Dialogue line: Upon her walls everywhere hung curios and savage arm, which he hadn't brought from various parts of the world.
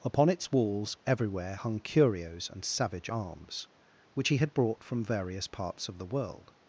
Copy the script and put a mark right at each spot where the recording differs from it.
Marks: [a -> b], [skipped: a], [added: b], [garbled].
Upon [her -> its] walls everywhere hung curios and savage [arm, -> arms] which he [hadn't -> had] brought from various parts of the world.